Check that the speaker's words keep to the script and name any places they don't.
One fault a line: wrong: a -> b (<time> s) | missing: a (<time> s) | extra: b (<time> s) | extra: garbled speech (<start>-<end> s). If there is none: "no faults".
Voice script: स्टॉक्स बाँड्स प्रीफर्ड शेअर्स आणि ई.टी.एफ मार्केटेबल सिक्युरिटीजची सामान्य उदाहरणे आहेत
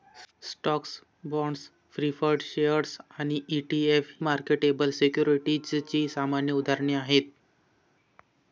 no faults